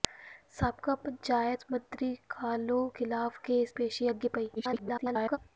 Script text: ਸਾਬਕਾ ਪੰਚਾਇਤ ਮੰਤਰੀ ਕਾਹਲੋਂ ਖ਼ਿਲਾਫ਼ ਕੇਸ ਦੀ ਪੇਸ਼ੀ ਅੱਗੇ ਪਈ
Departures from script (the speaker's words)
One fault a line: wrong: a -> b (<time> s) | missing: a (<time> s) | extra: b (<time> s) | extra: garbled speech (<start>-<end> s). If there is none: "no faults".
missing: ਦੀ (3.7 s)
extra: garbled speech (4.6-5.4 s)